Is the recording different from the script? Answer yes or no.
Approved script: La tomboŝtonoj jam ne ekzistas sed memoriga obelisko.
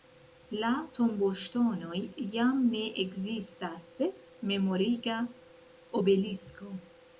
no